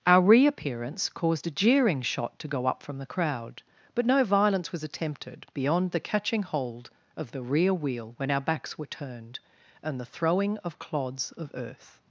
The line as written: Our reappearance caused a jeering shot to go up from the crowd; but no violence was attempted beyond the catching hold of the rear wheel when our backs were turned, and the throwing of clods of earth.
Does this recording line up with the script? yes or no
yes